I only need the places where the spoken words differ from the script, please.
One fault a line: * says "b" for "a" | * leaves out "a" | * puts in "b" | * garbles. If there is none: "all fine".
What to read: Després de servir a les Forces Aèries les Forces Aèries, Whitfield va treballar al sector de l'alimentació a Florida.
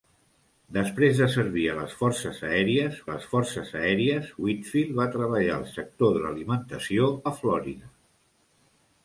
all fine